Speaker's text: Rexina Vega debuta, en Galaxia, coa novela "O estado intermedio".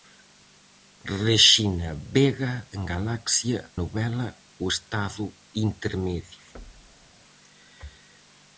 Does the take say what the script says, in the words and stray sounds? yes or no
no